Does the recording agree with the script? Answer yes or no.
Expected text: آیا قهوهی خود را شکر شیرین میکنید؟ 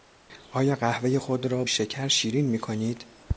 yes